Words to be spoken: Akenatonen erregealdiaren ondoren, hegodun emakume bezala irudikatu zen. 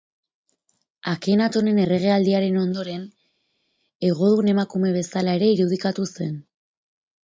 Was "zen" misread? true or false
false